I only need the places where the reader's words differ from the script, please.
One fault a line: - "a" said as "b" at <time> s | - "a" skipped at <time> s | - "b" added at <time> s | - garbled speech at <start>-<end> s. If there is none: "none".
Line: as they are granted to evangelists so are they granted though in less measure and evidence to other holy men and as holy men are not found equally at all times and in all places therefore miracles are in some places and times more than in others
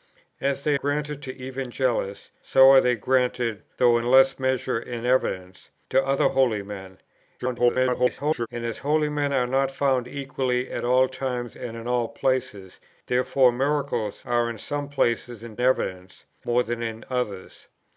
- "are" skipped at 0.8 s
- garbled speech at 7.4-8.5 s
- "times" said as "evidence" at 15.6 s